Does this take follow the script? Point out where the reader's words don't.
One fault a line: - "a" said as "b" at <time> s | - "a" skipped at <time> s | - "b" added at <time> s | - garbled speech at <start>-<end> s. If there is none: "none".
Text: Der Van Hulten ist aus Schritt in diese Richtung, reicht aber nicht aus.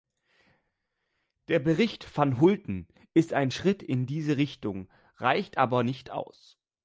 - "Bericht" added at 1.6 s
- "aus" said as "ein" at 3.3 s